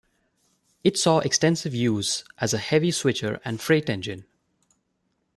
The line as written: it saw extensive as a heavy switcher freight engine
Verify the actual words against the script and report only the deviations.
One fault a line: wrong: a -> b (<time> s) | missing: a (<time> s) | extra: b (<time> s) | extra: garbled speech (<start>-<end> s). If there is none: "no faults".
extra: use (1.8 s)
extra: and (3.5 s)